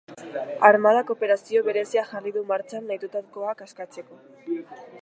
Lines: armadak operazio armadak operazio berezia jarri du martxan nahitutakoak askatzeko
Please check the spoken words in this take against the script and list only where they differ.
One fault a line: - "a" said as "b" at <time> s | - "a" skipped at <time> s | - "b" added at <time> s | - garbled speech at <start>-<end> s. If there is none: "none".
- "armadak operazio" skipped at 1.6 s